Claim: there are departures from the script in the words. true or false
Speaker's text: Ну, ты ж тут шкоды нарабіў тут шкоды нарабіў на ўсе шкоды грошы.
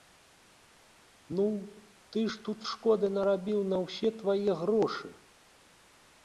true